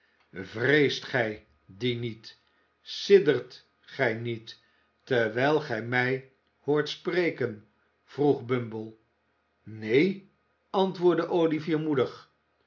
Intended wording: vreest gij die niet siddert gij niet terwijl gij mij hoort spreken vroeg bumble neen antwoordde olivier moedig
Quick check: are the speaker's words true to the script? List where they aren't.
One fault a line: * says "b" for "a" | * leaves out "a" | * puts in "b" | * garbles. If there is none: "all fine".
all fine